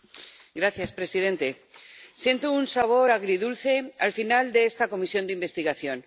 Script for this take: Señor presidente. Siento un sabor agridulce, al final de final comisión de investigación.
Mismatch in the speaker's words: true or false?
true